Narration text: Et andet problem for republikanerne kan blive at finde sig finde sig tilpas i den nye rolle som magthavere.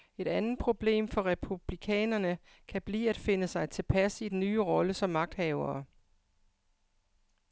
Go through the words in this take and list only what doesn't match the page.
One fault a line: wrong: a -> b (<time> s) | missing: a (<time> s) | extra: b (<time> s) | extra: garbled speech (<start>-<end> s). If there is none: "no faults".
missing: finde sig (3.7 s)